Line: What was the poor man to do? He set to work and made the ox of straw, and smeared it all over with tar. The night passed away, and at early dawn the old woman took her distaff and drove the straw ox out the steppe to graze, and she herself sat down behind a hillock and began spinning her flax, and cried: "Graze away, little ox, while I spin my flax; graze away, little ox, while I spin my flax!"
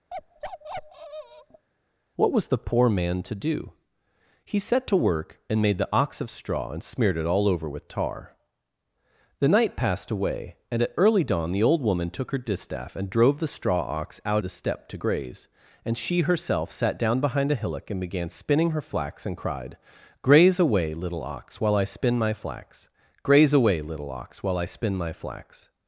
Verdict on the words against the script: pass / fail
pass